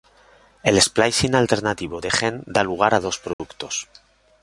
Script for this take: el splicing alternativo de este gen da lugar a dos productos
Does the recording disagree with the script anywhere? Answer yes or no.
yes